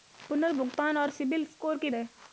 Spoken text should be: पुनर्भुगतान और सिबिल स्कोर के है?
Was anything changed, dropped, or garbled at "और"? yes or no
no